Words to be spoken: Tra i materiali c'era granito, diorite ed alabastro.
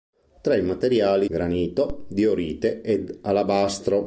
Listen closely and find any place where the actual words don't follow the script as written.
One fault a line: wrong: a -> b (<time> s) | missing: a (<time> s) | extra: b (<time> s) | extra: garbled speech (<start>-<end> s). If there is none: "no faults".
missing: c'era (1.3 s)